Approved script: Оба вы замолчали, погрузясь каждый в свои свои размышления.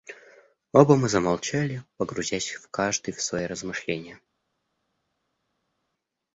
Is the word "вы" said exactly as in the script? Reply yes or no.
no